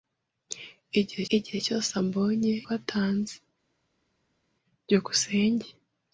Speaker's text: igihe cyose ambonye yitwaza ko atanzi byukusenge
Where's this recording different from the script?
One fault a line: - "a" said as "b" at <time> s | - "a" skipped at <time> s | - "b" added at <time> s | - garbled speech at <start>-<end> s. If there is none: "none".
- "igihe" added at 1.4 s
- "yitwaza" skipped at 2.5 s